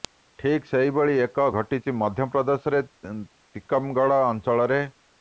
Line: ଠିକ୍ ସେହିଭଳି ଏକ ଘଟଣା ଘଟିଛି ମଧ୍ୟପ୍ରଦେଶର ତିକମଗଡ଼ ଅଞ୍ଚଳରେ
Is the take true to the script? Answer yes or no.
no